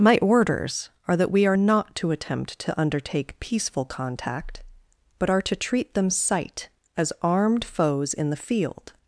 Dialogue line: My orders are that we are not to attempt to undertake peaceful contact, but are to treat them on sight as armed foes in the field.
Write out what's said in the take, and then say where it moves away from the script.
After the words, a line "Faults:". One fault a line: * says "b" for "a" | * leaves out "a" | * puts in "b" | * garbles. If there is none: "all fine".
My orders are that we are not to attempt to undertake peaceful contact, but are to treat them sight as armed foes in the field.
Faults:
* leaves out "on"